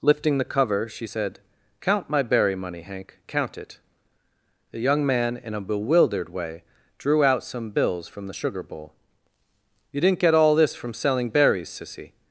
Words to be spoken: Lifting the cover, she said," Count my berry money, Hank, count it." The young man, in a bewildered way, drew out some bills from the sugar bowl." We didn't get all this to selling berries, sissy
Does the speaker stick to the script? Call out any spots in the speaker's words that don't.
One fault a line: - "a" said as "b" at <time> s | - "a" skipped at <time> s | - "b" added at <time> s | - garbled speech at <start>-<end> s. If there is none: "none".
- "We" said as "You" at 9.9 s
- "to" said as "from" at 10.7 s